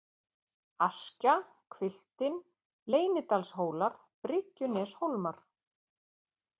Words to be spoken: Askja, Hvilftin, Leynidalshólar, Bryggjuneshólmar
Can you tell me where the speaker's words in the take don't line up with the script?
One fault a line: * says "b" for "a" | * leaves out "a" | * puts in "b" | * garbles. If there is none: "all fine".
all fine